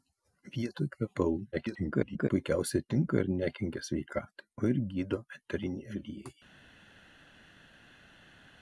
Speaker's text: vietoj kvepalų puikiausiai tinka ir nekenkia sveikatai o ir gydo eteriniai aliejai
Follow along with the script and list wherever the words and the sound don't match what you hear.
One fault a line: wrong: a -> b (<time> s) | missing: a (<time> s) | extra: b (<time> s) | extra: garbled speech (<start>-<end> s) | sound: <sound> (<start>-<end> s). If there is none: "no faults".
extra: garbled speech (1.5-2.3 s)